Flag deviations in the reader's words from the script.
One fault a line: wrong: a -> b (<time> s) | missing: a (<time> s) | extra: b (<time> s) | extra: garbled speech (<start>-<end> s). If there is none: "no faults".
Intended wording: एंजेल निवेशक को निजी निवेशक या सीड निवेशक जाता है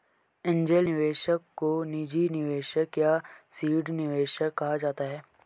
extra: कहा (4.5 s)